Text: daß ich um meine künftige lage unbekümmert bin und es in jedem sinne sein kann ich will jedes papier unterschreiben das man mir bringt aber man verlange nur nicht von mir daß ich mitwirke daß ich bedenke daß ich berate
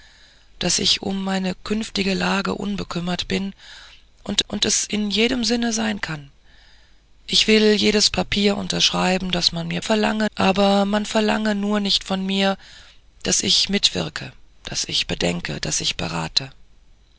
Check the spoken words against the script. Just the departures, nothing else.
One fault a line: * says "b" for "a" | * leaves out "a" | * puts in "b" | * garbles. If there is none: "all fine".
* puts in "und"
* says "verlange" for "bringt"